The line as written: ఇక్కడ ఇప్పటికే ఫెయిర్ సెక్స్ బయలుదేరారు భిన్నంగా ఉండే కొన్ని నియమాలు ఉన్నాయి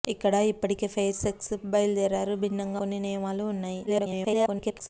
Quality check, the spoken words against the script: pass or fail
fail